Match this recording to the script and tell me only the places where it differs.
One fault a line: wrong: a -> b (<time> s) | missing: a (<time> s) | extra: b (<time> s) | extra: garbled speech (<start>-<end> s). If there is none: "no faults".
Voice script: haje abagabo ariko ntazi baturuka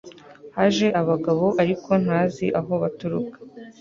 extra: aho (2.6 s)